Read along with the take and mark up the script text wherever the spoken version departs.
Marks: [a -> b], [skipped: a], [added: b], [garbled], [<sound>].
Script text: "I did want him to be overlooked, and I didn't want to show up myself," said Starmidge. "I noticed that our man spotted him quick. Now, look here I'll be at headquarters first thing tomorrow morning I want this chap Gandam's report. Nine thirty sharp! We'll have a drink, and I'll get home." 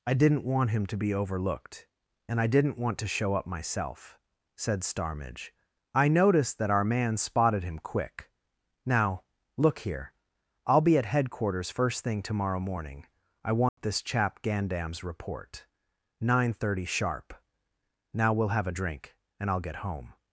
"I [did -> didn't] want him to be overlooked, and I didn't want to show up myself," said Starmidge. "I noticed that our man spotted him quick. Now, look here I'll be at headquarters first thing tomorrow morning I want [dropout] this chap Gandam's report. Nine thirty sharp! [added: Now] We'll have a drink, and I'll get home."